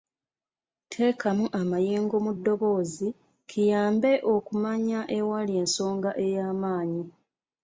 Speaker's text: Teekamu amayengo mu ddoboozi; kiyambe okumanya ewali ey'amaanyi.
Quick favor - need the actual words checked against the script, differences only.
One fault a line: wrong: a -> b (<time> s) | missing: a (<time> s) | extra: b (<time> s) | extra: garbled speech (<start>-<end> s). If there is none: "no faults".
extra: ensonga (5.6 s)